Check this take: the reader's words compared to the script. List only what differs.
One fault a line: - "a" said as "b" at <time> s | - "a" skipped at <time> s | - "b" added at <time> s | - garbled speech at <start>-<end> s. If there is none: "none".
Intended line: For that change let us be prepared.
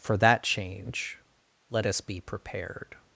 none